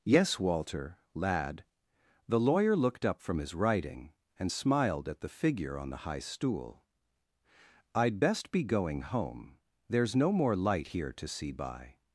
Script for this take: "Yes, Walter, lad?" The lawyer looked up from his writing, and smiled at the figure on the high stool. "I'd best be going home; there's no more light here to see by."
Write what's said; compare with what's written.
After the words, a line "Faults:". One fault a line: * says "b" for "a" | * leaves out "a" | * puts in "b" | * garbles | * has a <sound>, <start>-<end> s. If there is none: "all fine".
"Yes, Walter, lad?" The lawyer looked up from his writing, and smiled at the figure on the high stool. "I'd best be going home; there's no more light here to see by."
Faults:
all fine